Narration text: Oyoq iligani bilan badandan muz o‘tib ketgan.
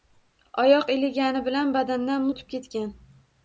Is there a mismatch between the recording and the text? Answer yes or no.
yes